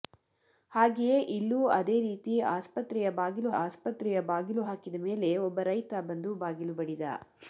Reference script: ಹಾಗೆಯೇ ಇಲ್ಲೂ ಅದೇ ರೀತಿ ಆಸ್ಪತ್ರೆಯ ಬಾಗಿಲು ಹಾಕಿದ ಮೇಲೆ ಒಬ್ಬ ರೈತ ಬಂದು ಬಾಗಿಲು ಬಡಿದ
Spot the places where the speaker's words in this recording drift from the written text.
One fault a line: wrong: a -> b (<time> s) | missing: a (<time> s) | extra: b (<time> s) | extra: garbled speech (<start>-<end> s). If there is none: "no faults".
extra: ಆಸ್ಪತ್ರೆಯ ಬಾಗಿಲು (3.6 s)